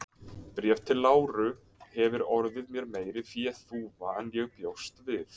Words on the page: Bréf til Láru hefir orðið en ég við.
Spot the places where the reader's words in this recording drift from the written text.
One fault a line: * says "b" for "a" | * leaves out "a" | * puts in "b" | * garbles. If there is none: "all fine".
* puts in "mér meiri féþúfa"
* puts in "bjóst"